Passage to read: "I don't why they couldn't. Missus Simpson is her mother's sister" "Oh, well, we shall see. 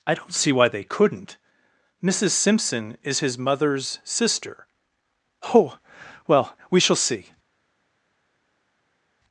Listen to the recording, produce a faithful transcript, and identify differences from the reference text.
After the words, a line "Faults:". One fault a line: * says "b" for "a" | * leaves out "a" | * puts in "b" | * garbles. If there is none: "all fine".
"I don't see why they couldn't. Missus Simpson is his mother's sister" "Oh, well, we shall see.
Faults:
* puts in "see"
* says "his" for "her"